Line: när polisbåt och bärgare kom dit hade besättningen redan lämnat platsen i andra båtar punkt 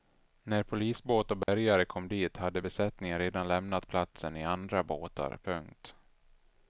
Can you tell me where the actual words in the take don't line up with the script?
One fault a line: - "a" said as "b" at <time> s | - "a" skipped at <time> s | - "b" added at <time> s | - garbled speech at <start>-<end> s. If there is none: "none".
none